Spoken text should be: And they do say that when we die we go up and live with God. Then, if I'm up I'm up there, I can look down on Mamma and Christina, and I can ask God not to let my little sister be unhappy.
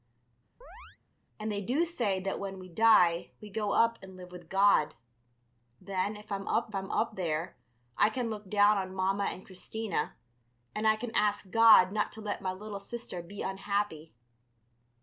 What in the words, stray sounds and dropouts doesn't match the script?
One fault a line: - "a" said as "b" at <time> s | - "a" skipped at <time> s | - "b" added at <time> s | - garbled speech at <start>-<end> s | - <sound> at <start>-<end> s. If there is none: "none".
- chirp at 0.6-1.0 s